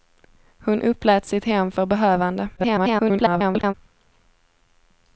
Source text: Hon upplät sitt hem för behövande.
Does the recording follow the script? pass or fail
fail